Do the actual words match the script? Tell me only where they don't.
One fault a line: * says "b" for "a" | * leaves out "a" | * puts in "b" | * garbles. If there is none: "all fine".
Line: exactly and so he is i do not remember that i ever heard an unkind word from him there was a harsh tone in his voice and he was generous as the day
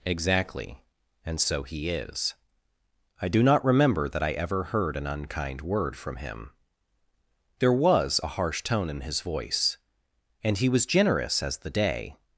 all fine